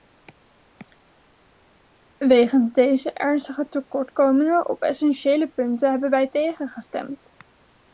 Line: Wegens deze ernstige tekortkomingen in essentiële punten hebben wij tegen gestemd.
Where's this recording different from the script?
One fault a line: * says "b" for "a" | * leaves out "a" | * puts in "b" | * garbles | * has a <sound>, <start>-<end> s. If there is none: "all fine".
* says "op" for "in"